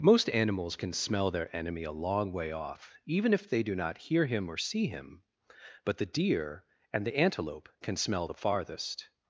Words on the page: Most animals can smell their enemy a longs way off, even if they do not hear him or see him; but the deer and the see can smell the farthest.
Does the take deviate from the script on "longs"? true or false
true